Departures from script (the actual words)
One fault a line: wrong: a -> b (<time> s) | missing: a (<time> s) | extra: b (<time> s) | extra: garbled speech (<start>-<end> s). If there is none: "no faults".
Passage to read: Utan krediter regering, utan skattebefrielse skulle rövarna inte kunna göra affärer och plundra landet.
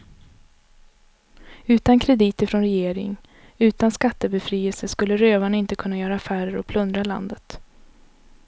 extra: från (2.4 s)